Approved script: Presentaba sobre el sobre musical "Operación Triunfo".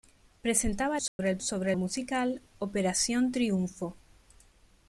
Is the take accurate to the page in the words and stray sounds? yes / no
no